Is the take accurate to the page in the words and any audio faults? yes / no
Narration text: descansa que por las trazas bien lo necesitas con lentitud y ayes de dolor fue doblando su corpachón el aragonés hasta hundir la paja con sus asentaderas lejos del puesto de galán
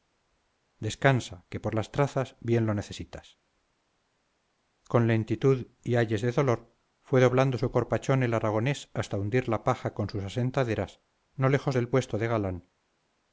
no